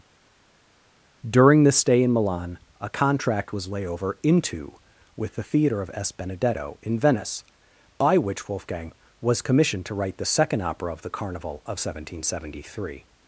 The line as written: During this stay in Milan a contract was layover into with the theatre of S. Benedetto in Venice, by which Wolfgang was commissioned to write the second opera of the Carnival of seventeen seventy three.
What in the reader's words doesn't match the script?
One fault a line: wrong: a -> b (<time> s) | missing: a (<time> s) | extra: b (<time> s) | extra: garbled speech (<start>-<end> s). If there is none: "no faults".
no faults